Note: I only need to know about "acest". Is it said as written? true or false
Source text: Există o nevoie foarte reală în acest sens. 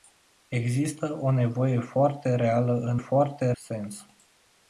false